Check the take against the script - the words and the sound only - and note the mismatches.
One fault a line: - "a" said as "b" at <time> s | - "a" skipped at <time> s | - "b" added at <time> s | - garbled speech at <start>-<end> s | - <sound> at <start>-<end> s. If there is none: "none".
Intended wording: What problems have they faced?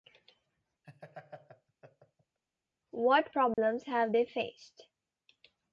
- laugh at 0.8-2.4 s
- dropout at 3.5-3.6 s